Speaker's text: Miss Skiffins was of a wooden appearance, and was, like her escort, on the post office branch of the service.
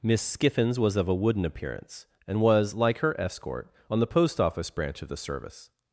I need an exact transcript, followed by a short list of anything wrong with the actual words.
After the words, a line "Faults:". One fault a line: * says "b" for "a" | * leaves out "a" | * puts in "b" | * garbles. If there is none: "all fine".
Miss Skiffins was of a wooden appearance, and was, like her escort, on the post office branch of the service.
Faults:
all fine